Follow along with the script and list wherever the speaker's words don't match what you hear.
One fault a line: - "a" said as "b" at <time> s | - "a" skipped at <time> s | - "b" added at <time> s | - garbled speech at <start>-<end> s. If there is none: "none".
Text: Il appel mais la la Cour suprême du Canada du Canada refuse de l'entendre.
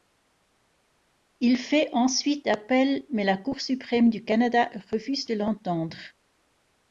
- "fait ensuite" added at 1.6 s
- "la" skipped at 3.4 s
- "du Canada" skipped at 4.7 s